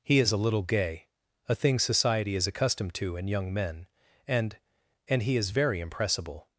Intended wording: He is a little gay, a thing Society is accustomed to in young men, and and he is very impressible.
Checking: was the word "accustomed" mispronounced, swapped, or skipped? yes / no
no